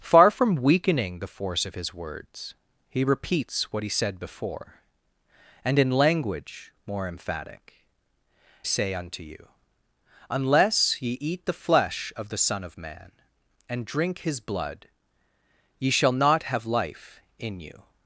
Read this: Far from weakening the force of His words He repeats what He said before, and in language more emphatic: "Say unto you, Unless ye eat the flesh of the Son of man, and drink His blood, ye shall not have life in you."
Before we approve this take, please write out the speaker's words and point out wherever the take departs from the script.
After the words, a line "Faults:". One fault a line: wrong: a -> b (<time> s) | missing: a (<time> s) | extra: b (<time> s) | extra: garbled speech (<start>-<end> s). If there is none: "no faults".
Far from weakening the force of His words He repeats what He said before, and in language more emphatic: "Say unto you, Unless ye eat the flesh of the Son of man, and drink His blood, ye shall not have life in you."
Faults:
no faults